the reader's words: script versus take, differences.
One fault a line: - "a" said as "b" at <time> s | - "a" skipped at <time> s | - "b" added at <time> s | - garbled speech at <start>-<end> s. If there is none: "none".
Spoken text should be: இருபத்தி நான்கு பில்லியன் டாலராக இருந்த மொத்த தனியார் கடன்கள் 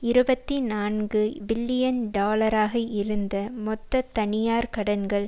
none